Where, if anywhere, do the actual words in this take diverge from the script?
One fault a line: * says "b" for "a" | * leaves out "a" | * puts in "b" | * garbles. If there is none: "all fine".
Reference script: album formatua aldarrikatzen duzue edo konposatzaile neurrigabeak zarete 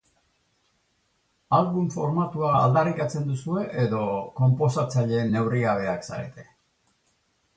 all fine